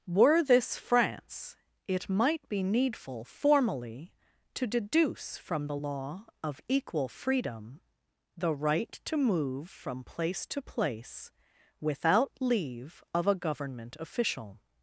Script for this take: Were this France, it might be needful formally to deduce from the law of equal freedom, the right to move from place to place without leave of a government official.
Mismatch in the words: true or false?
false